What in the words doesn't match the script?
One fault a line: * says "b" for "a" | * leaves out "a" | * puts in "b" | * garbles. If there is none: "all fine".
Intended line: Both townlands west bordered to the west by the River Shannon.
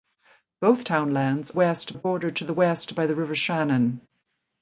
all fine